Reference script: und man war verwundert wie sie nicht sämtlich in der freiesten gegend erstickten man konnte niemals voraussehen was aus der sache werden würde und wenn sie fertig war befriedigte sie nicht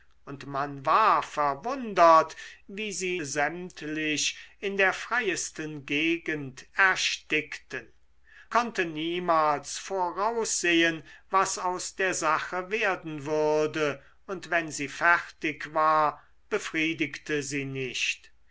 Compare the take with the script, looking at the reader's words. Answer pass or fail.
fail